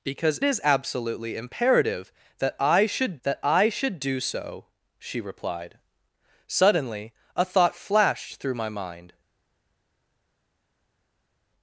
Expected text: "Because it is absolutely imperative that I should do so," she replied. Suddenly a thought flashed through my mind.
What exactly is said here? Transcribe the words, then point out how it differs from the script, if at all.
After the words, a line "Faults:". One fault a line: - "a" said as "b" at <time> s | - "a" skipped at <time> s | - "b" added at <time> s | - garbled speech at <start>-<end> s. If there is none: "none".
"Because is absolutely imperative that I should that I should do so," she replied. Suddenly a thought flashed through my mind.
Faults:
- "it" skipped at 0.4 s
- "that I should" added at 3.2 s